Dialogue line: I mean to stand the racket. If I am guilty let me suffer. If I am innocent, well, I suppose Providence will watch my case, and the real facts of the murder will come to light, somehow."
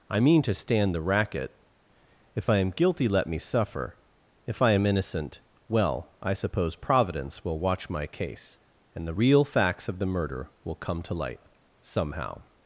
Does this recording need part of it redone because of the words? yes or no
no